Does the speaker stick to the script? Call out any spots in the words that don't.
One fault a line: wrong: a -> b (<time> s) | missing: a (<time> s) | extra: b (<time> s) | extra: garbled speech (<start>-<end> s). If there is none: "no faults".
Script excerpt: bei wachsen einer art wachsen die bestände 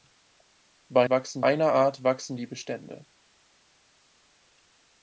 no faults